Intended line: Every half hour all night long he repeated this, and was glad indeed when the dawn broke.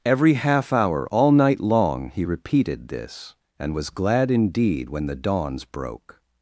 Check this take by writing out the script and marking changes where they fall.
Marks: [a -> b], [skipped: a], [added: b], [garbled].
Every half hour all night long he repeated this, and was glad indeed when the [dawn -> dawns] broke.